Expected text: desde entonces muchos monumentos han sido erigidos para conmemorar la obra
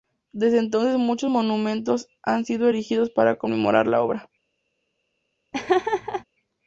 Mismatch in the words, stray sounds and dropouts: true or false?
true